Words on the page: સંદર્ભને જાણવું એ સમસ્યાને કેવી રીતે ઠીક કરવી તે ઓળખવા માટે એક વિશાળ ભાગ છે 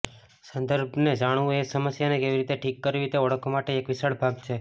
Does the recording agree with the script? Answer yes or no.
yes